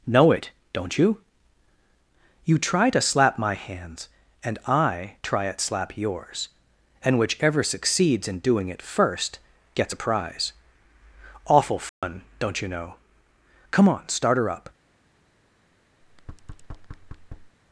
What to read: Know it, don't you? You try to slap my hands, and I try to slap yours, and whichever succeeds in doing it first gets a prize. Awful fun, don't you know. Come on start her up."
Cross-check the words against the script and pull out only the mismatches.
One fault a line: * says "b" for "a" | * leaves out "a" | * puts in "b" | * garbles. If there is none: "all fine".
* says "at" for "to"